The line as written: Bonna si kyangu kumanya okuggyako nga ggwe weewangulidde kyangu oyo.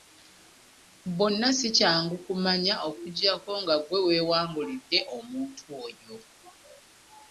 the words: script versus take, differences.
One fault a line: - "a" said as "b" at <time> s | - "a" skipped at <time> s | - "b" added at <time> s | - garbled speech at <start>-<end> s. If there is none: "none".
- "kyangu" said as "omuntu" at 5.2 s